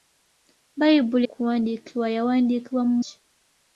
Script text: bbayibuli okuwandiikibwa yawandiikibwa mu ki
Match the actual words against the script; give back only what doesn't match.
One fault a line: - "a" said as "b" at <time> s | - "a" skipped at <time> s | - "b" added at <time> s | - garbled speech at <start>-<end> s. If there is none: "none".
none